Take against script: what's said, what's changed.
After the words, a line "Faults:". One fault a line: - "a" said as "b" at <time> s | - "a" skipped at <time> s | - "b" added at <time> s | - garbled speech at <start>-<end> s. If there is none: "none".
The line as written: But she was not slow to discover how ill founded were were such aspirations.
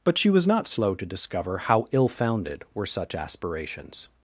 But she was not slow to discover how ill founded were such aspirations.
Faults:
- "were" skipped at 2.9 s